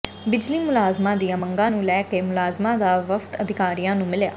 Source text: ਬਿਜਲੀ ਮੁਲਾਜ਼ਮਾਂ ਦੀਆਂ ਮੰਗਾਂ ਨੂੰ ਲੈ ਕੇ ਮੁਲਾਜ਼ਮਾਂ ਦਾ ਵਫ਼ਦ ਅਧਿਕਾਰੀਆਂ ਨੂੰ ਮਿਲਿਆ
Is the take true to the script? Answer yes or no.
yes